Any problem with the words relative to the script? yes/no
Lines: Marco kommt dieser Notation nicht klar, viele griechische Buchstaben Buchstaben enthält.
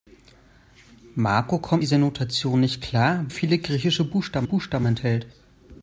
no